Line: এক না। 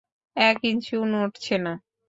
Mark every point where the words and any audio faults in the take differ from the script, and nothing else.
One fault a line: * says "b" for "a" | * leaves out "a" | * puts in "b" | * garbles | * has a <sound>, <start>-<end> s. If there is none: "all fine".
* puts in "ইঞ্চিও নড়ছে"